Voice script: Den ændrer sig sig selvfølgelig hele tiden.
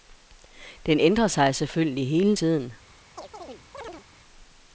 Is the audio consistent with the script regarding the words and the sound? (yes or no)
no